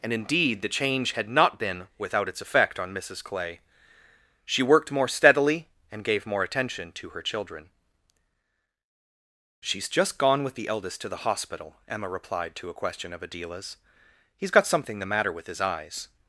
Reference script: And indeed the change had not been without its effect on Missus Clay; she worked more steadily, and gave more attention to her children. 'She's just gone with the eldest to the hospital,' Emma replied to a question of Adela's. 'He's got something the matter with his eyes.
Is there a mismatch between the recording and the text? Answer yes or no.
no